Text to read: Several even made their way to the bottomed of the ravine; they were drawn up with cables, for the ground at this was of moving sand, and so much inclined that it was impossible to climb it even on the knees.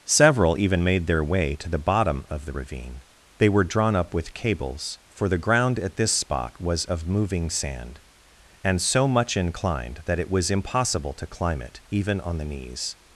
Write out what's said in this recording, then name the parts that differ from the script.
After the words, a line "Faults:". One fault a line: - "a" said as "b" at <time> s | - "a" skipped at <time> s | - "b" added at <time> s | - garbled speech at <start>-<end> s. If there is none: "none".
Several even made their way to the bottom of the ravine; they were drawn up with cables, for the ground at this spot was of moving sand, and so much inclined that it was impossible to climb it even on the knees.
Faults:
- "bottomed" said as "bottom" at 1.8 s
- "spot" added at 6.1 s